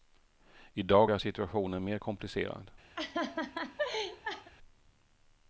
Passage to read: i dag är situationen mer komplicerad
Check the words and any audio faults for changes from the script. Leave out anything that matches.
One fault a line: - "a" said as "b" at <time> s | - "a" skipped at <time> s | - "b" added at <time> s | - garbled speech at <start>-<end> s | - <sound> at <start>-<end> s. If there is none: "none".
- laugh at 3.0-4.5 s